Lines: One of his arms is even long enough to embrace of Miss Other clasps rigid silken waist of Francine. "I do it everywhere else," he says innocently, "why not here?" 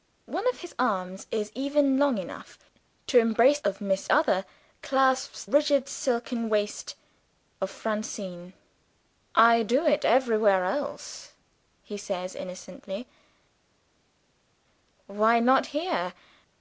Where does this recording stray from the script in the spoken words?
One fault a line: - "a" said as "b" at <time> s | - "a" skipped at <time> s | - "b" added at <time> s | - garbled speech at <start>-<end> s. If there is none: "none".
none